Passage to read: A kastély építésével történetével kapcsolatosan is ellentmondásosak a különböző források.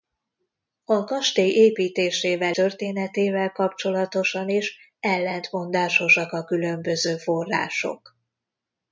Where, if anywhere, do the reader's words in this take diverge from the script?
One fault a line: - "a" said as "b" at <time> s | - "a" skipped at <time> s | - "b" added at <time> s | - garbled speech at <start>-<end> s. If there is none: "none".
none